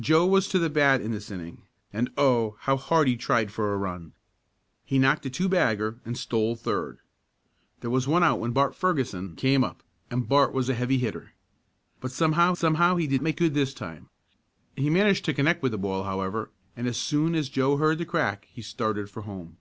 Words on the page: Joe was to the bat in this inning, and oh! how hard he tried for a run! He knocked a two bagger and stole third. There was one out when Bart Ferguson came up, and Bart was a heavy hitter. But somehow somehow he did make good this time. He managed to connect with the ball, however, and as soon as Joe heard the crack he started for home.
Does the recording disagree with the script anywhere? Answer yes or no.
no